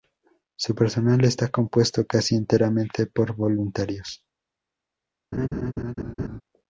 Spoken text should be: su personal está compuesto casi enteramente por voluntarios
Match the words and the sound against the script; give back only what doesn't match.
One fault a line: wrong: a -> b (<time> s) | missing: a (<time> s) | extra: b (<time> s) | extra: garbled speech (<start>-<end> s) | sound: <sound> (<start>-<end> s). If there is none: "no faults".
sound: laugh (5.3-6.4 s)